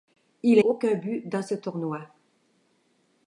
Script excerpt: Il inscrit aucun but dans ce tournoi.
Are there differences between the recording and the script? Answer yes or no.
yes